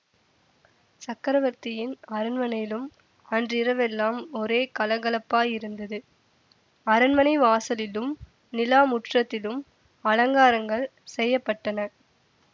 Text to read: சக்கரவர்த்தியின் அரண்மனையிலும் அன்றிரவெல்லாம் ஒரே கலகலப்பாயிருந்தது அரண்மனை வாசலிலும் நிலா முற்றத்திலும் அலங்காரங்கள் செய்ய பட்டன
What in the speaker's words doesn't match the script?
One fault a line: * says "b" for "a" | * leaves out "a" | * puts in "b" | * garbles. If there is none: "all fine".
all fine